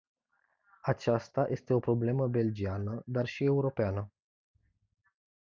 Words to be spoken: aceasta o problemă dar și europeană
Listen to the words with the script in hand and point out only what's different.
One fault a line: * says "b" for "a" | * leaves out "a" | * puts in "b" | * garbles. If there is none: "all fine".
* puts in "este"
* puts in "belgiană"